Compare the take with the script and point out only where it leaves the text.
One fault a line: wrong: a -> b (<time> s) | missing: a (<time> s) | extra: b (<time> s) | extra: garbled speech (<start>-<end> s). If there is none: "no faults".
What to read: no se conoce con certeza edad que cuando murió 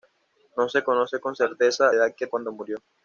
no faults